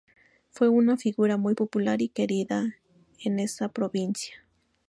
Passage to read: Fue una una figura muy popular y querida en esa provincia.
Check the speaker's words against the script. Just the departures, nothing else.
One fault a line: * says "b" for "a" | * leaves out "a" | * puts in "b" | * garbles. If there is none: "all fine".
* leaves out "una"